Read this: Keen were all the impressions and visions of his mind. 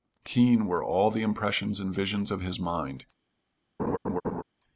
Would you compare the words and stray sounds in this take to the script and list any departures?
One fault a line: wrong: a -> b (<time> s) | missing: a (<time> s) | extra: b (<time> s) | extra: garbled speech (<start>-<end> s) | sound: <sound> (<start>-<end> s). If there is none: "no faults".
sound: laugh (3.8-4.4 s)